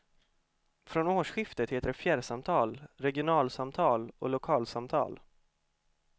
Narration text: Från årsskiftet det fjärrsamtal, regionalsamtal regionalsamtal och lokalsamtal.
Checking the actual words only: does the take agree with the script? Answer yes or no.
no